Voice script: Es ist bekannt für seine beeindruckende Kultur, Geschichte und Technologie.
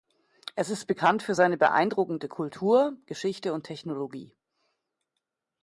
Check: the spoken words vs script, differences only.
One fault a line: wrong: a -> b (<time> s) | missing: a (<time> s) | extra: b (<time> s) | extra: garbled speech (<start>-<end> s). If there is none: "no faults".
no faults